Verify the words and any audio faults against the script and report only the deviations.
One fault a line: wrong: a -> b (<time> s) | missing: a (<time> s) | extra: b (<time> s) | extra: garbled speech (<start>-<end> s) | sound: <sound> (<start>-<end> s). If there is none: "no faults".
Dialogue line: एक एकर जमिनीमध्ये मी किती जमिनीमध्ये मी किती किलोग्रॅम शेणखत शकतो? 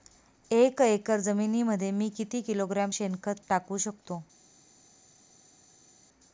missing: जमिनीमध्ये मी किती (2.4 s)
extra: टाकू (3.5 s)